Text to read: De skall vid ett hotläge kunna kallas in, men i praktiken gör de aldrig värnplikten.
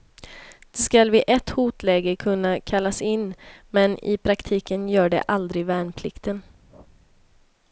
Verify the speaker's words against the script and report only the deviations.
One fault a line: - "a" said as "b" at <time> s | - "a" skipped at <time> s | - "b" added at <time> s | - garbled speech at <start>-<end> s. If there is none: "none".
none